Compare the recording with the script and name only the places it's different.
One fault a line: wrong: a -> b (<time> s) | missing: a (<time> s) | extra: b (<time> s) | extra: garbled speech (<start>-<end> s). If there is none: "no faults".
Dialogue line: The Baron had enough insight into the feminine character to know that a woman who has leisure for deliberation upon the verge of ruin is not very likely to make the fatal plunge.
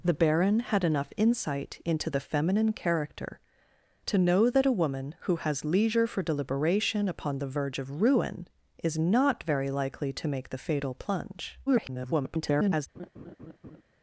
extra: garbled speech (11.7-12.9 s)